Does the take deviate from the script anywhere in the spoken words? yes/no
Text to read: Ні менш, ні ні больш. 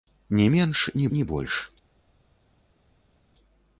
no